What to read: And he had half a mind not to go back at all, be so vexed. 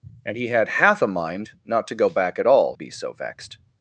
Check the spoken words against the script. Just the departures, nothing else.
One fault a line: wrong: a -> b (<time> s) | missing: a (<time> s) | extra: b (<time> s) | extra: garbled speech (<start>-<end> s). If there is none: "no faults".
no faults